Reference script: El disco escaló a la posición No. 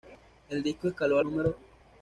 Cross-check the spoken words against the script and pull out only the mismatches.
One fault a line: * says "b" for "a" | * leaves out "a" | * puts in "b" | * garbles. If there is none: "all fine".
* leaves out "la posición"